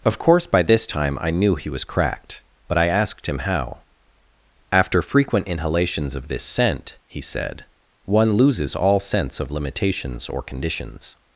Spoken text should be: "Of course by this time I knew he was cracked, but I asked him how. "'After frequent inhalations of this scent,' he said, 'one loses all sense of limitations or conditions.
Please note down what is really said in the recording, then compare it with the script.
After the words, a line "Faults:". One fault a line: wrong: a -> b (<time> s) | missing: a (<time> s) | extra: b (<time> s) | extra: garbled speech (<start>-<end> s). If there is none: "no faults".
"Of course by this time I knew he was cracked, but I asked him how. "'After frequent inhalations of this scent,' he said, 'one loses all sense of limitations or conditions.
Faults:
no faults